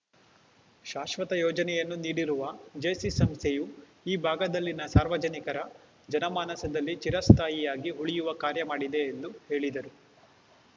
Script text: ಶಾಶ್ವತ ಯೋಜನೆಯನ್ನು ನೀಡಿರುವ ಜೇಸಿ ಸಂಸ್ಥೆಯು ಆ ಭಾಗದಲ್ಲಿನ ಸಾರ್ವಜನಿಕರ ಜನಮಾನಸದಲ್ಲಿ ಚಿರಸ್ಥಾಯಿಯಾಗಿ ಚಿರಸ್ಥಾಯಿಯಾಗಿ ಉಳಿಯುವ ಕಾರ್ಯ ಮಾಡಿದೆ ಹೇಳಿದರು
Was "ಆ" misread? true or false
true